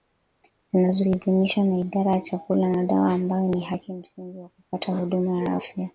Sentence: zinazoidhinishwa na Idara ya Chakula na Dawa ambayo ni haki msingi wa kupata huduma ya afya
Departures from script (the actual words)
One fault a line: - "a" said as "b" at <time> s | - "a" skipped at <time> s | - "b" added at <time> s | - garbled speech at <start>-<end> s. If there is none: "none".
none